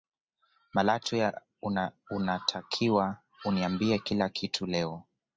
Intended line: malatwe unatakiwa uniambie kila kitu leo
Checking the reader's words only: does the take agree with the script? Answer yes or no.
yes